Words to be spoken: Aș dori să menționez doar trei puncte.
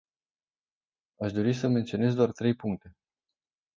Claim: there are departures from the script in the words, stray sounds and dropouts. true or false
false